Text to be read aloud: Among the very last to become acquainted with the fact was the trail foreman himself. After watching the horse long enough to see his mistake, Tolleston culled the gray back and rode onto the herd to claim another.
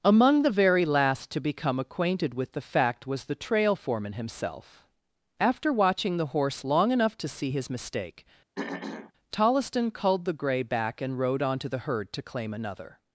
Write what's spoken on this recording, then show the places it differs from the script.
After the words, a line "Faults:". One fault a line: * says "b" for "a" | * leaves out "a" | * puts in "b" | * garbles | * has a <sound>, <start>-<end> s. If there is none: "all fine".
Among the very last to become acquainted with the fact was the trail foreman himself. After watching the horse long enough to see his mistake, Tolleston culled the gray back and rode onto the herd to claim another.
Faults:
* has a throat clearing, 8.6-9.1 s